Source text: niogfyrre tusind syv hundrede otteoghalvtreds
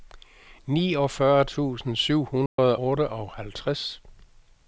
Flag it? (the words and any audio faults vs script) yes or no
yes